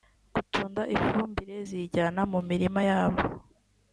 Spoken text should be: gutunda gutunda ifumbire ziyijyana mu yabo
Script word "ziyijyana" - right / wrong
right